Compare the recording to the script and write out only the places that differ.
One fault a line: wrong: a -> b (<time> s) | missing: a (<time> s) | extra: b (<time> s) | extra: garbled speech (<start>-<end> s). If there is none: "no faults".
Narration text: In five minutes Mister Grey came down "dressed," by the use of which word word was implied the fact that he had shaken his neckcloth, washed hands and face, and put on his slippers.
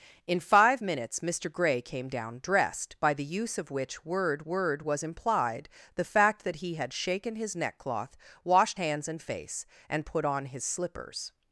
no faults